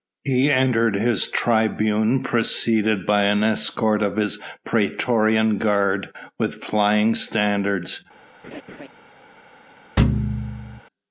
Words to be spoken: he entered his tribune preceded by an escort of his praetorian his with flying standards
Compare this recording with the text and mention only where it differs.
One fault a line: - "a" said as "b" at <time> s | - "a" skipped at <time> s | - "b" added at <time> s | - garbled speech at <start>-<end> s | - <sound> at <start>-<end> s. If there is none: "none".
- "his" said as "guard" at 5.6 s
- laugh at 8.4-8.9 s
- thud at 10.0-10.8 s